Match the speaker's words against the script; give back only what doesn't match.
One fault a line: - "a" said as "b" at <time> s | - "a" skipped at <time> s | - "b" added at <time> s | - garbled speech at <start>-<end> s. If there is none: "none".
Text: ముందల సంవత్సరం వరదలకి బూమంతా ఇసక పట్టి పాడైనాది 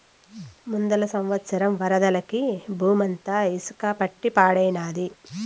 none